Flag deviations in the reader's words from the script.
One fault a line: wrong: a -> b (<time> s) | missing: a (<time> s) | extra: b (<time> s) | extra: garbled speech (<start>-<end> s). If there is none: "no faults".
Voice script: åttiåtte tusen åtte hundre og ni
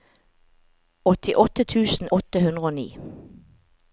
no faults